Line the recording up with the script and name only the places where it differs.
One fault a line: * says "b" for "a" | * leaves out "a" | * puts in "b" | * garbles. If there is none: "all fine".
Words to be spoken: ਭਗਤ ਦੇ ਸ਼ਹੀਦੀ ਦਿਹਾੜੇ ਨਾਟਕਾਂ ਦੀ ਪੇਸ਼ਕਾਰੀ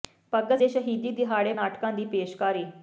all fine